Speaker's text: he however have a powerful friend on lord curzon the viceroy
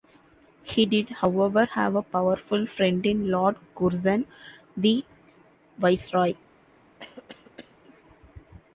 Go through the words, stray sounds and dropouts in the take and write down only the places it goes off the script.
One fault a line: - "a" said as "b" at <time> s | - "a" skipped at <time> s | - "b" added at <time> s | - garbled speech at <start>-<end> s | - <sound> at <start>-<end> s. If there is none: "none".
- "did" added at 0.9 s
- "on" said as "in" at 3.0 s
- cough at 7.0-7.8 s